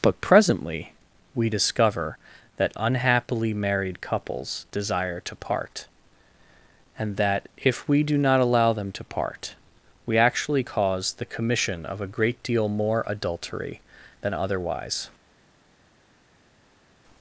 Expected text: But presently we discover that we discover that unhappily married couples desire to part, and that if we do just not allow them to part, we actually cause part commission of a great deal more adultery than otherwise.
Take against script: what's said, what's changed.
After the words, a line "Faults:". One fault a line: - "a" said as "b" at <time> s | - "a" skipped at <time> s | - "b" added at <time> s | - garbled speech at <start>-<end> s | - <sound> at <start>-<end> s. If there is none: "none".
But presently we discover that unhappily married couples desire to part, and that if we do not allow them to part, we actually cause the commission of a great deal more adultery than otherwise.
Faults:
- "we discover that" skipped at 2.7 s
- "just" skipped at 8.2 s
- "part" said as "the" at 11.1 s